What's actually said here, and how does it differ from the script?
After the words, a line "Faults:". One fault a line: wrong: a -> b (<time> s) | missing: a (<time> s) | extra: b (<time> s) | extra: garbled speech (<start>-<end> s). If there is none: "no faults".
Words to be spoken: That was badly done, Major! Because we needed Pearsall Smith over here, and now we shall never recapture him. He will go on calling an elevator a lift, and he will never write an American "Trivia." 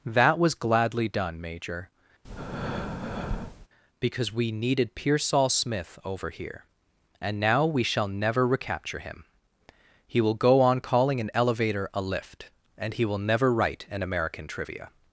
That was gladly done, Major! Because we needed Pearsall Smith over here, and now we shall never recapture him. He will go on calling an elevator a lift, and he will never write an American "Trivia."
Faults:
wrong: badly -> gladly (0.6 s)